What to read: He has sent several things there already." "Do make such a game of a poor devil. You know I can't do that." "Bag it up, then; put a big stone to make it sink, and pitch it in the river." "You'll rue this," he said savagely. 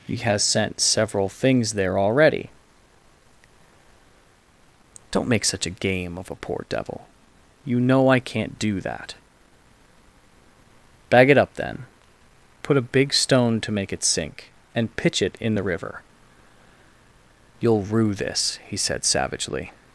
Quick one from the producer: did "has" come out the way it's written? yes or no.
yes